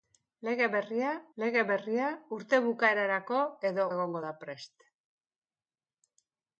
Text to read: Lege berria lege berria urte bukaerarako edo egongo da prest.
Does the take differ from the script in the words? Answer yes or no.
no